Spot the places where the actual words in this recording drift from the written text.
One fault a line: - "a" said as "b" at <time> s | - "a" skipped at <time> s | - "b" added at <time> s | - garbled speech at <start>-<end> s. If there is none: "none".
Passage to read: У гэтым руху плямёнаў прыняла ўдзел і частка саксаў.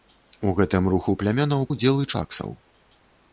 - "прыняла" skipped at 1.6 s
- "частка" skipped at 2.1 s